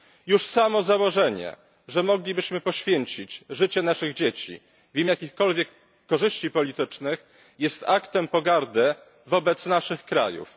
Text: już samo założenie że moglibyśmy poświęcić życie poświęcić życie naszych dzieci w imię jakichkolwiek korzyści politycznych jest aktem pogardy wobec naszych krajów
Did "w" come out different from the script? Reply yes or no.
no